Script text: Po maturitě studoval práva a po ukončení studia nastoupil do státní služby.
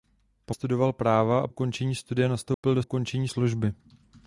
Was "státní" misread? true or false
true